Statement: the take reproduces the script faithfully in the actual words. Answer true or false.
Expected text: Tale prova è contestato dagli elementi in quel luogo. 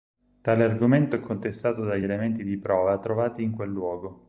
false